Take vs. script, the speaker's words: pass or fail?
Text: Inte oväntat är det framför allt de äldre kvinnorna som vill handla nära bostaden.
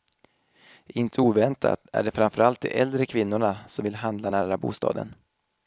pass